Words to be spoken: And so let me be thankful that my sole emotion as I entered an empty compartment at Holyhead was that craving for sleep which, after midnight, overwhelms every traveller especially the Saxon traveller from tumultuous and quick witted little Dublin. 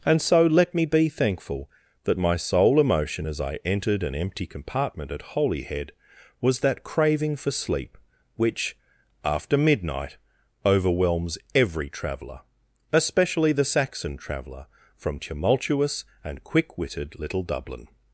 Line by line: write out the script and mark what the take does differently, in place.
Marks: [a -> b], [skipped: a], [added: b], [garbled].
And so let me be thankful that my sole emotion as I entered an empty compartment at Holyhead was that craving for sleep which, after midnight, overwhelms every traveller especially the Saxon traveller from tumultuous and quick witted little Dublin.